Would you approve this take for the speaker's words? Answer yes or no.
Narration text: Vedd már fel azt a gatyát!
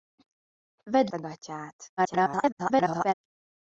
no